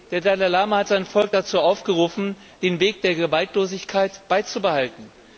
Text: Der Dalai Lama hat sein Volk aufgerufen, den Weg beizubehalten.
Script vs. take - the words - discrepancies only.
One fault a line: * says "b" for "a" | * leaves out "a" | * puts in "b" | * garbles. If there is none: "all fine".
* puts in "dazu"
* puts in "der Gewaltlosigkeit"